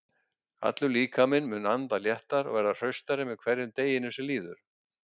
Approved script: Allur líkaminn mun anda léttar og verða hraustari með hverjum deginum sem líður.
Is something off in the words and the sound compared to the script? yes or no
no